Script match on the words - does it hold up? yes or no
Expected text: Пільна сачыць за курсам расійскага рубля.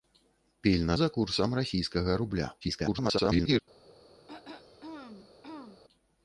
no